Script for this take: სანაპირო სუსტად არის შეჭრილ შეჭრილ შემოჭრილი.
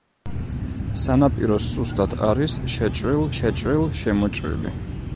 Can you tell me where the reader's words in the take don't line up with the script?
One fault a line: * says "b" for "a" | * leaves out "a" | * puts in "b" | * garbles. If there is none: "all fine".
all fine